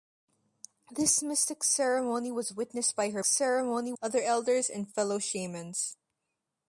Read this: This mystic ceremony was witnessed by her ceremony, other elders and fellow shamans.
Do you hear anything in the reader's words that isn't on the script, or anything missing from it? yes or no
no